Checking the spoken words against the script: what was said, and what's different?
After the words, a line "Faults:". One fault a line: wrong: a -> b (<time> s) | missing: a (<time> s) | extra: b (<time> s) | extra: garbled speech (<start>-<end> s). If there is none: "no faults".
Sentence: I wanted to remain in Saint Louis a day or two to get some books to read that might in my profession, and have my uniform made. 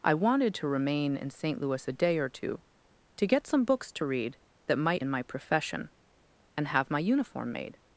I wanted to remain in Saint Louis a day or two to get some books to read that might in my profession, and have my uniform made.
Faults:
no faults